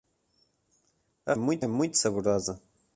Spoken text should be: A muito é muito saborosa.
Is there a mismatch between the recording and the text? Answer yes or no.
no